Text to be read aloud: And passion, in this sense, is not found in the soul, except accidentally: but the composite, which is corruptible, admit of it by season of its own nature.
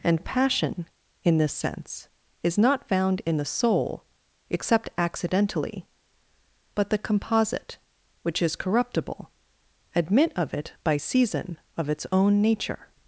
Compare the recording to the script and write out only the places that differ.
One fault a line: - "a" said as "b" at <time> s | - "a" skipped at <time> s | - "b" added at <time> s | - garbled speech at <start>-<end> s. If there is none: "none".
none